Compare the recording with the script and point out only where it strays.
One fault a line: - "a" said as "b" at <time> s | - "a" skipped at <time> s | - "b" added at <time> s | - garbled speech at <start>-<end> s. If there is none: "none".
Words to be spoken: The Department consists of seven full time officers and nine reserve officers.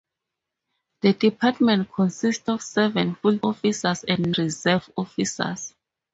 - "time" skipped at 3.4 s
- "nine" skipped at 4.3 s